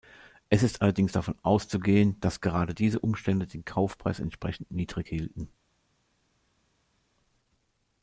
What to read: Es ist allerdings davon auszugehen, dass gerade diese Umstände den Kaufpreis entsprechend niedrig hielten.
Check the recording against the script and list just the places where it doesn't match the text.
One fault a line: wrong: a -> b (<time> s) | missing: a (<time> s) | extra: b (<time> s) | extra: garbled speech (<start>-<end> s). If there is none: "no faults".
no faults